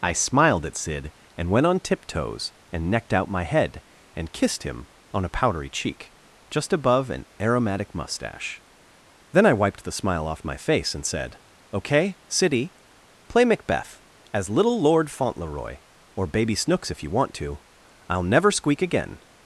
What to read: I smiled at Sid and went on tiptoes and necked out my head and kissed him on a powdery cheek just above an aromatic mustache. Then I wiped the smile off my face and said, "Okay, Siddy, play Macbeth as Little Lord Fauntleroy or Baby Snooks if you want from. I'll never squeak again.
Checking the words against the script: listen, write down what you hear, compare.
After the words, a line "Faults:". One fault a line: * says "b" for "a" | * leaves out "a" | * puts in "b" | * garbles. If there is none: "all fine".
I smiled at Sid and went on tiptoes and necked out my head and kissed him on a powdery cheek just above an aromatic mustache. Then I wiped the smile off my face and said, "Okay, Siddy, play Macbeth as Little Lord Fauntleroy or Baby Snooks if you want to. I'll never squeak again.
Faults:
* says "to" for "from"